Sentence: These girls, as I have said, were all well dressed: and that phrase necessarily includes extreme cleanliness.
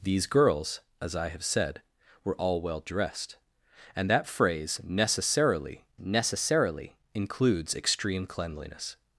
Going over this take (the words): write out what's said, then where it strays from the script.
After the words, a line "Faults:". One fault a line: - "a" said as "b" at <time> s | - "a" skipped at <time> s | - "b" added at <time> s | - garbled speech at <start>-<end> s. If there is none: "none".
These girls, as I have said, were all well dressed: and that phrase necessarily necessarily includes extreme cleanliness.
Faults:
- "necessarily" added at 6.0 s